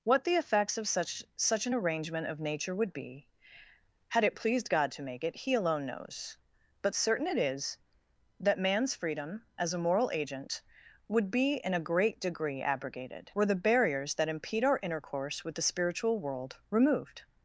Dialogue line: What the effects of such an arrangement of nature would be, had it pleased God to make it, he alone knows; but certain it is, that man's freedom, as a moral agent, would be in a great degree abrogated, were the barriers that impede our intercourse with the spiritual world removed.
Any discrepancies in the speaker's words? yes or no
yes